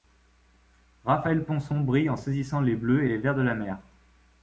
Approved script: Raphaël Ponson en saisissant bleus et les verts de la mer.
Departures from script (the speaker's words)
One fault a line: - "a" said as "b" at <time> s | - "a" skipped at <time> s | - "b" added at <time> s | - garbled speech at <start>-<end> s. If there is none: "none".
- "brille" added at 1.8 s
- "les" added at 2.6 s